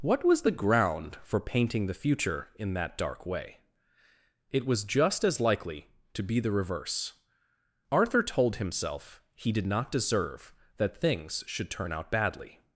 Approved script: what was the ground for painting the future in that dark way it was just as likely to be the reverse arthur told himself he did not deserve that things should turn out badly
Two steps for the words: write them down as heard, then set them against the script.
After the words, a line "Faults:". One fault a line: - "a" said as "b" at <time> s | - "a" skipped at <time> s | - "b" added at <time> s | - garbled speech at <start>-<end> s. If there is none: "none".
what was the ground for painting the future in that dark way it was just as likely to be the reverse arthur told himself he did not deserve that things should turn out badly
Faults:
none